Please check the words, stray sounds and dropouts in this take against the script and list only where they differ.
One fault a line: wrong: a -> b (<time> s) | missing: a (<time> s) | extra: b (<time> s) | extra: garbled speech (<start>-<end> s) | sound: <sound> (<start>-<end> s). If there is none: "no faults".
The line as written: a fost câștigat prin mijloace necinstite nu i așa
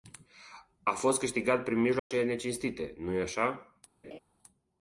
sound: dropout (2.0-2.1 s)
sound: laugh (4.0-4.2 s)